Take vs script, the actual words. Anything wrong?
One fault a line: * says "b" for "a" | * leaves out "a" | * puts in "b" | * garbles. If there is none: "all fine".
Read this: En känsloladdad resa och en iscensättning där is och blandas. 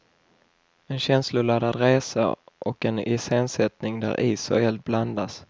* puts in "eld"